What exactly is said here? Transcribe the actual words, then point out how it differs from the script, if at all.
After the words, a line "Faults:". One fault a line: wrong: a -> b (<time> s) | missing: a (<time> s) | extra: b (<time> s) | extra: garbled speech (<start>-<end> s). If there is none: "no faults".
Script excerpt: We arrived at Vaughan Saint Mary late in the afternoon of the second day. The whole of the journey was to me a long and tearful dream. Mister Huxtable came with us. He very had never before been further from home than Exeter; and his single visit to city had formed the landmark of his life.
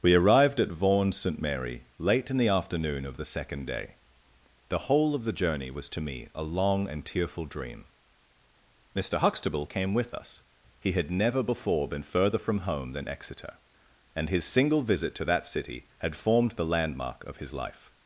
We arrived at Vaughan Saint Mary late in the afternoon of the second day. The whole of the journey was to me a long and tearful dream. Mister Huxtable came with us. He had never before been further from home than Exeter; and his single visit to that city had formed the landmark of his life.
Faults:
missing: very (10.9 s)
extra: that (15.2 s)